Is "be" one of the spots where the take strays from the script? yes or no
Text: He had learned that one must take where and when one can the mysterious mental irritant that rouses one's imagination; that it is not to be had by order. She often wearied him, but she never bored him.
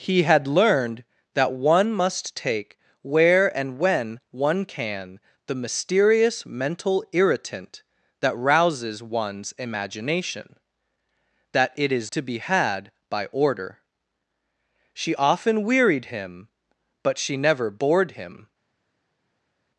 no